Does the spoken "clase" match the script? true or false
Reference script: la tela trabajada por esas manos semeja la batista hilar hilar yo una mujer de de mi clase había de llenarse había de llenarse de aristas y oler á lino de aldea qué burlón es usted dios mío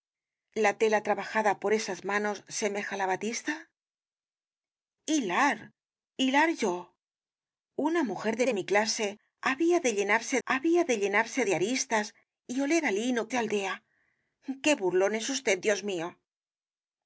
true